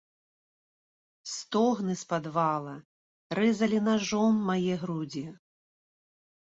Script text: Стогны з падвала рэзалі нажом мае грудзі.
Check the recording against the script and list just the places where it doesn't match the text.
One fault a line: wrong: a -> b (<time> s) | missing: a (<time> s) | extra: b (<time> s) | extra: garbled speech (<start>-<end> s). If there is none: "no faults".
no faults